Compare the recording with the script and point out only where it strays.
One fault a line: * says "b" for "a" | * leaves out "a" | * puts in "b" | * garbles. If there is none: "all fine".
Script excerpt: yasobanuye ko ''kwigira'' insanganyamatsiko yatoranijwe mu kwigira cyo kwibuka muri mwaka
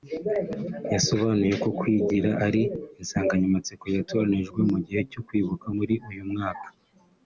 * puts in "ari"
* says "gihe" for "kwigira"
* puts in "uyu"